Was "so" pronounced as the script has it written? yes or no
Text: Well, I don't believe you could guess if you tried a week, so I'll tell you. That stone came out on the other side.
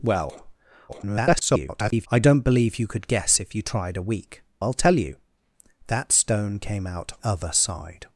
no